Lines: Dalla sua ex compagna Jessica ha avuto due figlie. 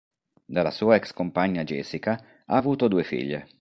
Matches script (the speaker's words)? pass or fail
pass